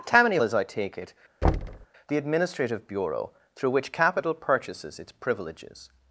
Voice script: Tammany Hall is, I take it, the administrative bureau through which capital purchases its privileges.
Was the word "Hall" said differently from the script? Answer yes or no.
yes